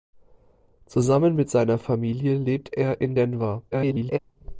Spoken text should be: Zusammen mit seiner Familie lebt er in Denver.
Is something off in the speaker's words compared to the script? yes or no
yes